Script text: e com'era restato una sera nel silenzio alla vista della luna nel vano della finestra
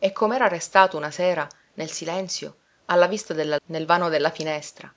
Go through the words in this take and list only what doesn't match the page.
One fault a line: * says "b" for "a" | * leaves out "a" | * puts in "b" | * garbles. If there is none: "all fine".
* leaves out "luna"